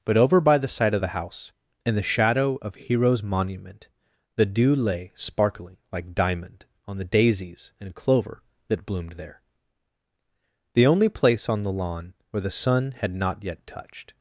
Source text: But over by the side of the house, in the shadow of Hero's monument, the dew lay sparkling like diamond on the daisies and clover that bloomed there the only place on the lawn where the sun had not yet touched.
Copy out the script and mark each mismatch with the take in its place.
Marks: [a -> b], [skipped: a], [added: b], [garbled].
But over by the side of the house, in the shadow of Hero's monument, the dew lay sparkling like diamond on the daisies and clover that bloomed there the only place on the lawn where the sun had not yet touched.